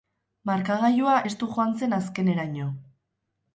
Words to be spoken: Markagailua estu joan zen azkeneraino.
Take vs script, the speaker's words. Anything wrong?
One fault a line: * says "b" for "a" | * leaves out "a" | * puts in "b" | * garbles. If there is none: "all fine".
all fine